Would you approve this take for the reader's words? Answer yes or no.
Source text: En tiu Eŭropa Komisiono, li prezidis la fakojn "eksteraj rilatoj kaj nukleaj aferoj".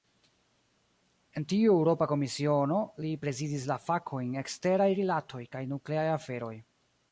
yes